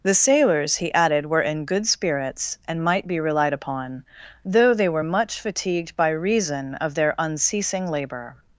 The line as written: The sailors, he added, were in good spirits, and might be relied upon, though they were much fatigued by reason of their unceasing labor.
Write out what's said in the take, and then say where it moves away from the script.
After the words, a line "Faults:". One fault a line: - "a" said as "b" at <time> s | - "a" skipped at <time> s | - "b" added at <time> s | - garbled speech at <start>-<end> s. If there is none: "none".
The sailors, he added, were in good spirits, and might be relied upon, though they were much fatigued by reason of their unceasing labor.
Faults:
none